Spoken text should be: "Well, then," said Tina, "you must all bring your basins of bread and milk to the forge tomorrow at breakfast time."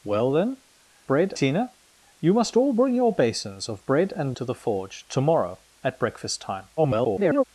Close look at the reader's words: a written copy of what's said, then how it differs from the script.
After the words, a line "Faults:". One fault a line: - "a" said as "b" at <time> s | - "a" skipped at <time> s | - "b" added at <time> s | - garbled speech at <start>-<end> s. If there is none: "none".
"Well, then," bread Tina, "you must all bring your basins of bread and to the forge tomorrow at breakfast time." [garbled]
Faults:
- "said" said as "bread" at 1.1 s
- "milk" skipped at 4.3 s
- garbled speech at 6.8-7.4 s